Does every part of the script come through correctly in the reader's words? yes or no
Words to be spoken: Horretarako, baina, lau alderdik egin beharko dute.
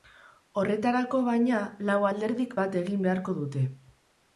no